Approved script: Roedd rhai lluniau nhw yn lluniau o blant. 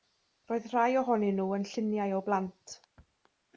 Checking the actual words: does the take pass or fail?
fail